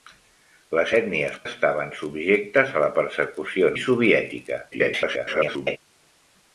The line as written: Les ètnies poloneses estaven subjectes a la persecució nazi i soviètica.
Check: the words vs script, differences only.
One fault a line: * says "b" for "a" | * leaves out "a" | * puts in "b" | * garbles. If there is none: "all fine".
* leaves out "poloneses"
* leaves out "nazi"
* garbles